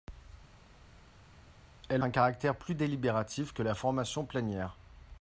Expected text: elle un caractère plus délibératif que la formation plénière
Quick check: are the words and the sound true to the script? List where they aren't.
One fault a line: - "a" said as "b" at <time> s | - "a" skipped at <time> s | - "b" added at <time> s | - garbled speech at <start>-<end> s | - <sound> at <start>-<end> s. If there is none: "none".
none